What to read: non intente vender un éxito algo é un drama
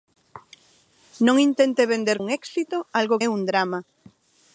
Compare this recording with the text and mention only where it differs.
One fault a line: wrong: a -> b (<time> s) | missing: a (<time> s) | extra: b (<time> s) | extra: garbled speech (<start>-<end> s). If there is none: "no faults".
no faults